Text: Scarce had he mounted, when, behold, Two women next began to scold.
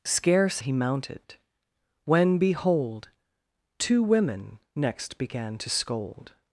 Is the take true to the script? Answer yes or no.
no